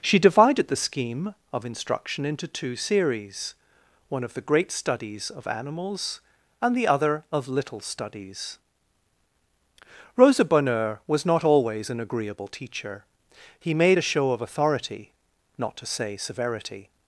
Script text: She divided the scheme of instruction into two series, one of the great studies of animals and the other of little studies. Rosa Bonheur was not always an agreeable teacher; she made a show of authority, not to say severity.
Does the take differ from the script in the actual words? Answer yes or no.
yes